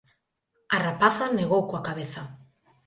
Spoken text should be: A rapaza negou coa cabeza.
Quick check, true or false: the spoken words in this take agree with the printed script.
true